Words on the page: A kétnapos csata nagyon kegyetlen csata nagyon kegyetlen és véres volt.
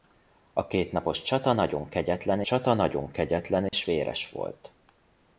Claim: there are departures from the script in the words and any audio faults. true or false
true